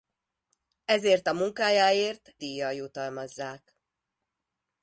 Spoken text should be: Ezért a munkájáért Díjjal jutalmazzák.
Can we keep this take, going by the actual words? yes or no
yes